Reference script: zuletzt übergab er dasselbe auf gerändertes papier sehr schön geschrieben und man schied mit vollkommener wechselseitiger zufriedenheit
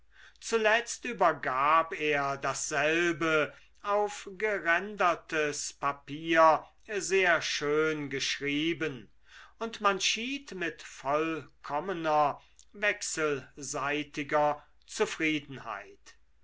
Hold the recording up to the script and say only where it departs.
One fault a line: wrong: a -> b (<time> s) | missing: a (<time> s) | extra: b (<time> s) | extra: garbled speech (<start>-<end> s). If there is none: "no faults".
no faults